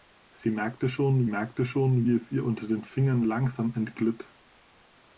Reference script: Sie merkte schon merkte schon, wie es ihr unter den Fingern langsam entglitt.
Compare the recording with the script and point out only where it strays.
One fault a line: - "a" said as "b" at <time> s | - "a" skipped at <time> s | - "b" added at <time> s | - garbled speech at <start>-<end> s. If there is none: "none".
none